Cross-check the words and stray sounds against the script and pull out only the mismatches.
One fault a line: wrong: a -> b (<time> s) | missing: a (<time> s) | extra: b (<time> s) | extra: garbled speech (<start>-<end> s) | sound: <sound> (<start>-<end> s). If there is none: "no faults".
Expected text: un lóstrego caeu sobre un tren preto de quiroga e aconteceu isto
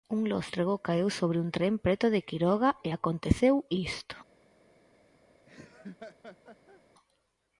sound: laugh (5.5-6.8 s)